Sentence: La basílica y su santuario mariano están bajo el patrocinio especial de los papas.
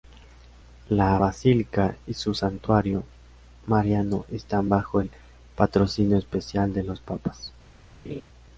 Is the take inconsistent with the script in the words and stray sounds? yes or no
yes